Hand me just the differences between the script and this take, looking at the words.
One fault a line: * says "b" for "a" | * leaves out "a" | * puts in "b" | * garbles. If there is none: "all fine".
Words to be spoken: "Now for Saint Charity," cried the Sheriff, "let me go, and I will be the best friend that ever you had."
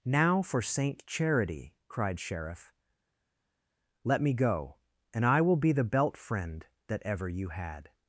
* leaves out "the"
* says "belt" for "best"